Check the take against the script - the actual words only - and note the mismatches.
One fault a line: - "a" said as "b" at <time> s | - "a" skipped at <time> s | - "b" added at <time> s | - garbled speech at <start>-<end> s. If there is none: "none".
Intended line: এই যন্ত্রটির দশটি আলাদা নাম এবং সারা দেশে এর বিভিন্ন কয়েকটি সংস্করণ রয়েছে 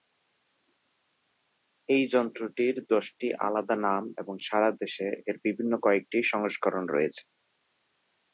none